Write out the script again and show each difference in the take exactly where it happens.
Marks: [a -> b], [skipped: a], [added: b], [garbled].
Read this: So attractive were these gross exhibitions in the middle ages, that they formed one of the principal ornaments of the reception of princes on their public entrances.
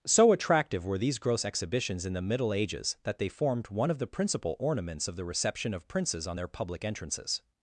So attractive were these gross exhibitions in the middle ages, that they formed one of the principal ornaments of the reception of princes on their public entrances.